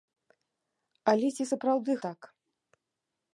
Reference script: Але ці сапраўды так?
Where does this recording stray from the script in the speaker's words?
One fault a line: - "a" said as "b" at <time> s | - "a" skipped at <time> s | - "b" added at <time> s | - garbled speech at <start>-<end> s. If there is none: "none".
none